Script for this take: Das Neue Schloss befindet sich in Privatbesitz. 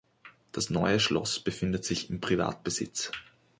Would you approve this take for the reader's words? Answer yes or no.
yes